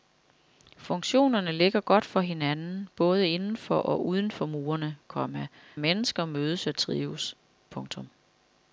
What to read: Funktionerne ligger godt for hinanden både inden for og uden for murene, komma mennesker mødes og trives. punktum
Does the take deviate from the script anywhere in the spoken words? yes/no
no